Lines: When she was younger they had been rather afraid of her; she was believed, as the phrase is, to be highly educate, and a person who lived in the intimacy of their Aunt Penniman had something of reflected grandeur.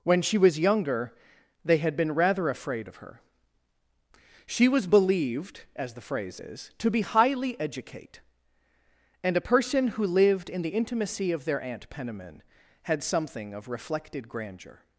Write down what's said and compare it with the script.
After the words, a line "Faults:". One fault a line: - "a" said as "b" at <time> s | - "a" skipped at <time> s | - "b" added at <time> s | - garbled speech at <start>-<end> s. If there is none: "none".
When she was younger they had been rather afraid of her; she was believed, as the phrase is, to be highly educate, and a person who lived in the intimacy of their Aunt Penniman had something of reflected grandeur.
Faults:
none